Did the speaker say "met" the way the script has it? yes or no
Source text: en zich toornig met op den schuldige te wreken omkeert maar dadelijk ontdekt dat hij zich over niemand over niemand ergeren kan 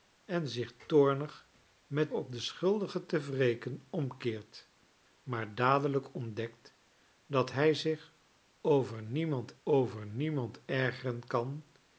yes